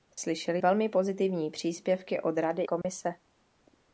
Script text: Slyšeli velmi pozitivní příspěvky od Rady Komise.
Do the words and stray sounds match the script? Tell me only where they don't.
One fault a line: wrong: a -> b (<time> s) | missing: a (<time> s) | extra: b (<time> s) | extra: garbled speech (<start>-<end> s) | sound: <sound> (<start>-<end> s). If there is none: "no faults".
sound: dropout (2.8-2.8 s)